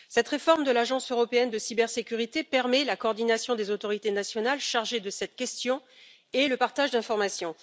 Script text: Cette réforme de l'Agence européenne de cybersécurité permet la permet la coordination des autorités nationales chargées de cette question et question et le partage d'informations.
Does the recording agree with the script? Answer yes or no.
no